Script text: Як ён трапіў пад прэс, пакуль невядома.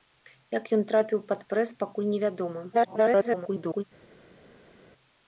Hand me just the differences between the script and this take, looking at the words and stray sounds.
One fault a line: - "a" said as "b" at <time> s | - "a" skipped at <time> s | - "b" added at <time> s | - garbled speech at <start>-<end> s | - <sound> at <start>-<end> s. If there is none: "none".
- garbled speech at 2.7-3.8 s